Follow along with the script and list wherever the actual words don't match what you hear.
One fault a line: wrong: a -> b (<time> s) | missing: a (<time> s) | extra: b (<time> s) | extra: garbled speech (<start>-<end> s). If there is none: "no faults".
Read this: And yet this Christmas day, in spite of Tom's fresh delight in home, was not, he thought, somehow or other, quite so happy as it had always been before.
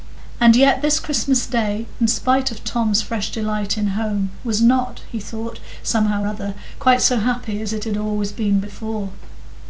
missing: or (6.2 s)